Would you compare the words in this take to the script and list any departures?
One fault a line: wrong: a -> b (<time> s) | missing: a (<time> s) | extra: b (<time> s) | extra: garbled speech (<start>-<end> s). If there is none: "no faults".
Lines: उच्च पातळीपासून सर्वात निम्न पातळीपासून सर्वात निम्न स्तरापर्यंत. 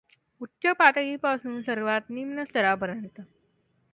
missing: पातळीपासून सर्वात निम्न (2.4 s)